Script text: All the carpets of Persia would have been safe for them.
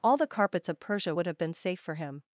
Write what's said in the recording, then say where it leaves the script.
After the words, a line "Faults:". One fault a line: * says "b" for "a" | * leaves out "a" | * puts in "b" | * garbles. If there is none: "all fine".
All the carpets of Persia would have been safe for him.
Faults:
* says "him" for "them"